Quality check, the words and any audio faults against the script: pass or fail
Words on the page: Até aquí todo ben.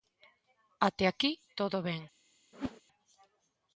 fail